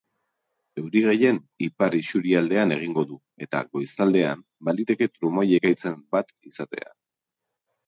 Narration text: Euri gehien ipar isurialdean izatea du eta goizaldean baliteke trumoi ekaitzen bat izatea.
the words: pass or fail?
fail